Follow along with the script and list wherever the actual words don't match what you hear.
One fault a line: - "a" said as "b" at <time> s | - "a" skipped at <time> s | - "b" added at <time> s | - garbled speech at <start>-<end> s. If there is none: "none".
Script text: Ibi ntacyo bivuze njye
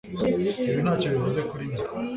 - "kuri" added at 1.5 s